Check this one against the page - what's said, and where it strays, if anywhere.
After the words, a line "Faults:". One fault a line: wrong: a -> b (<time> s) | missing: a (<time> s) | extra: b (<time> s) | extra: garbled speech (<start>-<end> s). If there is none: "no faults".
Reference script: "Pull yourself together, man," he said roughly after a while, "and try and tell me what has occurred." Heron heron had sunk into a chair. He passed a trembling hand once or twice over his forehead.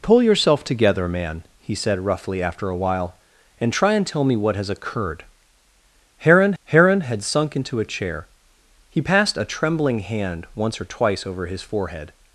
"Pull yourself together, man," he said roughly after a while, "and try and tell me what has occurred." Heron heron had sunk into a chair. He passed a trembling hand once or twice over his forehead.
Faults:
no faults